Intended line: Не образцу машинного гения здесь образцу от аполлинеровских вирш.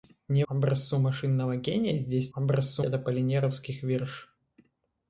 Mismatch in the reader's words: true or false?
false